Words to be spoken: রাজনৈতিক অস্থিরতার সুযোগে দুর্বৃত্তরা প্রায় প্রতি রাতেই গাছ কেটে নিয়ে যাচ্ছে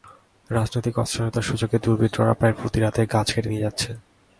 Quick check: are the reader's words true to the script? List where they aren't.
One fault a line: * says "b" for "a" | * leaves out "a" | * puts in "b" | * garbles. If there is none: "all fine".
all fine